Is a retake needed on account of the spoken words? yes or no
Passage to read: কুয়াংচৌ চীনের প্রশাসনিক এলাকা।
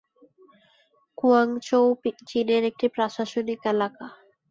yes